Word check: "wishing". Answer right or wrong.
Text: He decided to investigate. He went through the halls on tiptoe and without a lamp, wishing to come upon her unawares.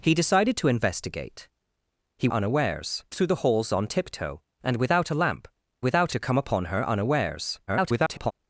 wrong